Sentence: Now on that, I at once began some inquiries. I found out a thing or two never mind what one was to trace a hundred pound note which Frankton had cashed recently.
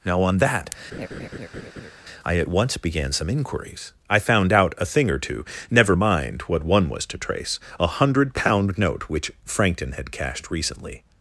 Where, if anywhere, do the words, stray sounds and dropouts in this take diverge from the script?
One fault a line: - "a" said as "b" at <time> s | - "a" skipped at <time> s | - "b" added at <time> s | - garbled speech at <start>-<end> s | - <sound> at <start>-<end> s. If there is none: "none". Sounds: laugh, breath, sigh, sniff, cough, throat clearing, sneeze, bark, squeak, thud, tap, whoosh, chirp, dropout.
- laugh at 0.9-1.9 s